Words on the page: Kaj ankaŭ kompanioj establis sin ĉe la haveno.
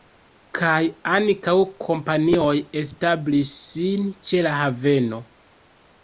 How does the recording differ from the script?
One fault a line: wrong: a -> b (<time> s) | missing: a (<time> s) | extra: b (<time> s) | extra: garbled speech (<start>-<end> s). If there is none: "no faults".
no faults